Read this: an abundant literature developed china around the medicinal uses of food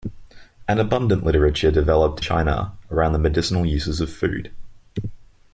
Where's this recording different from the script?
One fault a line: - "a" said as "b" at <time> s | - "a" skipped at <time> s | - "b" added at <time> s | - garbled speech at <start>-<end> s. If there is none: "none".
none